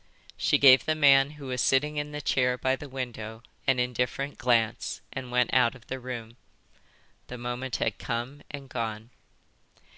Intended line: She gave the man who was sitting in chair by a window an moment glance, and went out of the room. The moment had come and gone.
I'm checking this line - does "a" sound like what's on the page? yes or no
no